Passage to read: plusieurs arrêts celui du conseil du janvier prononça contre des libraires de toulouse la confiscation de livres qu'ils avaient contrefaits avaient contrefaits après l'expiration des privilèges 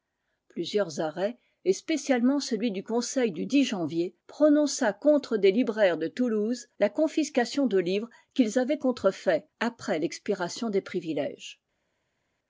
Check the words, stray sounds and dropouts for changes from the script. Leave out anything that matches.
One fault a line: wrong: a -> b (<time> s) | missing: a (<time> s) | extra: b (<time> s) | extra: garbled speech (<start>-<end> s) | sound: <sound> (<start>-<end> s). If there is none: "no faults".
extra: et spécialement (1.6 s)
missing: avaient contrefaits (9.4 s)